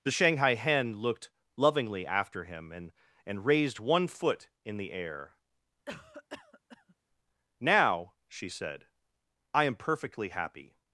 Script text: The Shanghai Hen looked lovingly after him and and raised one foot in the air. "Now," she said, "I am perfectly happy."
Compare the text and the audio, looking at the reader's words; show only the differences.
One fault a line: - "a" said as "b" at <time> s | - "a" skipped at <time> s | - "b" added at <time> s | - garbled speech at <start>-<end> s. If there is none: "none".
none